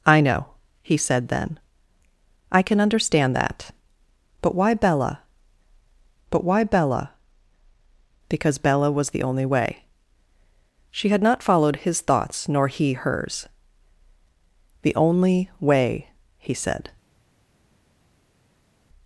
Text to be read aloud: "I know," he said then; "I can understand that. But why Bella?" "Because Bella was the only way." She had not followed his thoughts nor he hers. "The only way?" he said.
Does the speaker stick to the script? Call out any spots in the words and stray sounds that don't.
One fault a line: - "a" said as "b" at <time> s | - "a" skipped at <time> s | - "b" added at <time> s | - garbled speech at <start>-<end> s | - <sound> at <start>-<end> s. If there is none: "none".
- "but why Bella" added at 6.3 s